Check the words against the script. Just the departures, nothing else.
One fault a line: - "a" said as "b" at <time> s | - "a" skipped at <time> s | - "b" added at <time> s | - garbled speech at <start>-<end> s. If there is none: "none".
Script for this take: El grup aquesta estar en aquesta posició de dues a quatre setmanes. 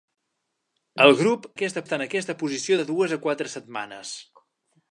none